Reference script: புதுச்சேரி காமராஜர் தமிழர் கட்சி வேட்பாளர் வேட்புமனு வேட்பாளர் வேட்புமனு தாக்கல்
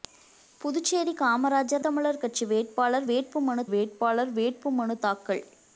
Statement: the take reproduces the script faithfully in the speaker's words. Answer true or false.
true